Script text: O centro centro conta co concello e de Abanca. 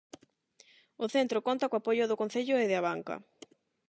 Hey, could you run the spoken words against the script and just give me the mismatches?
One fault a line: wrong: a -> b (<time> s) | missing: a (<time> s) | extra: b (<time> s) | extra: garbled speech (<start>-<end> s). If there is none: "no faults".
missing: centro (1.4 s)
extra: apoio do (1.8 s)